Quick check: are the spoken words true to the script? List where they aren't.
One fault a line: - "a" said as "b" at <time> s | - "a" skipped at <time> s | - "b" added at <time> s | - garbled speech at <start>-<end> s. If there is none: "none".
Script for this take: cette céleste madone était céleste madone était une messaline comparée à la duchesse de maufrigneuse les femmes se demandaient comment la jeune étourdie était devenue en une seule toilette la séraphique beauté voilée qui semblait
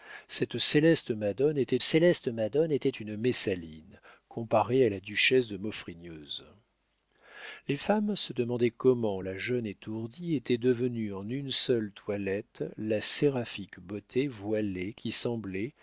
none